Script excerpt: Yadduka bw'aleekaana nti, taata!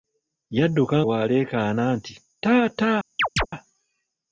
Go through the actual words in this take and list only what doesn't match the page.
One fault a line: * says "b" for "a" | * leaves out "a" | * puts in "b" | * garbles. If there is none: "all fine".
all fine